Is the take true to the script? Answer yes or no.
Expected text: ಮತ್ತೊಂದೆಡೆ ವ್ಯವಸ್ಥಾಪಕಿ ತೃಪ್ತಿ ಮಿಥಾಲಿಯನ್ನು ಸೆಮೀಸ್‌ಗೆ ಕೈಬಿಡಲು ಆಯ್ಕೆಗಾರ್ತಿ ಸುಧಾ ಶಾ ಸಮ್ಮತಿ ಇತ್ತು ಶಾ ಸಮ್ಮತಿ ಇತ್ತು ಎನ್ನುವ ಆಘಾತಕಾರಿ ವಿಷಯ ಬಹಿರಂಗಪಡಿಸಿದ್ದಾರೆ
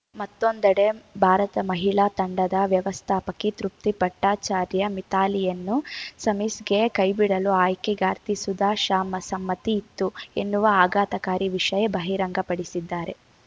no